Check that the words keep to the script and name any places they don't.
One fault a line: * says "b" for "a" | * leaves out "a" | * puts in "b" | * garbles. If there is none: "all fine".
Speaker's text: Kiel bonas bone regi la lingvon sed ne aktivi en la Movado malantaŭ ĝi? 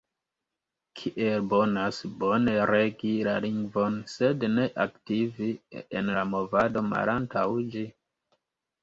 all fine